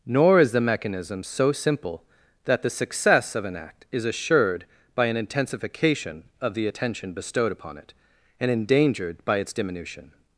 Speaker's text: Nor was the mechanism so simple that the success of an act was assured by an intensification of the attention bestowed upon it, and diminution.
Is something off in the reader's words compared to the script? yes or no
yes